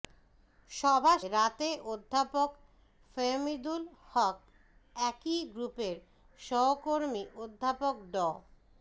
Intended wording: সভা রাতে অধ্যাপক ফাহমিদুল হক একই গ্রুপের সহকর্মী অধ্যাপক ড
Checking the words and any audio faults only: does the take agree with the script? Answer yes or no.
yes